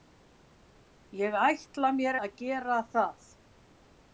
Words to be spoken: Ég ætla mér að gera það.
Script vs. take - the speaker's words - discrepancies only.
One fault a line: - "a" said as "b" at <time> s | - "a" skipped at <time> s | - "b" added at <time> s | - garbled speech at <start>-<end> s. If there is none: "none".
none